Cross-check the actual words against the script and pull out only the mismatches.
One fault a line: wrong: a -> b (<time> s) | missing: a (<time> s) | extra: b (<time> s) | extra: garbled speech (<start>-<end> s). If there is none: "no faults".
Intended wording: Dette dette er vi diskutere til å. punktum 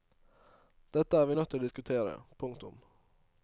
missing: dette (1.2 s)
wrong: diskutere -> nødt (1.3 s)
extra: diskutere (1.6 s)